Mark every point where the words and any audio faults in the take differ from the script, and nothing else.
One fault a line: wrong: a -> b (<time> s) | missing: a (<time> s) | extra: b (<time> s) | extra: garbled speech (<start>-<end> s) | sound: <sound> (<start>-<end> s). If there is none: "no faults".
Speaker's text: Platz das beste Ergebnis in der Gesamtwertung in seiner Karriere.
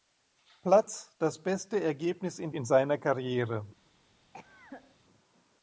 missing: der Gesamtwertung (2.5 s)
sound: cough (4.3-5.0 s)